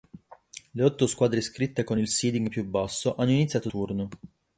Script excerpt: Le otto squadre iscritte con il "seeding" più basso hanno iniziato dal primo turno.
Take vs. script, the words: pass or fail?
fail